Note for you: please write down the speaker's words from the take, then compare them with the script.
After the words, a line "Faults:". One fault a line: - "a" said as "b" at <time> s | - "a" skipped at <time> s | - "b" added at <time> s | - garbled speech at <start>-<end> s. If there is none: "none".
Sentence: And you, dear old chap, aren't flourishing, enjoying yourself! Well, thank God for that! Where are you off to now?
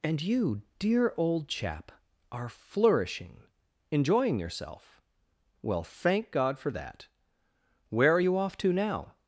And you, dear old chap, are flourishing, enjoying yourself! Well, thank God for that! Where are you off to now?
Faults:
- "aren't" said as "are" at 2.3 s